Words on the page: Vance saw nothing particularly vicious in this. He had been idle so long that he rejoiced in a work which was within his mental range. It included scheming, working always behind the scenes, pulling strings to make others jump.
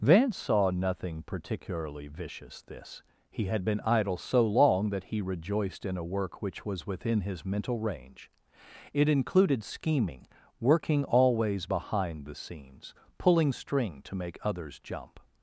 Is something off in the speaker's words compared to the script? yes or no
yes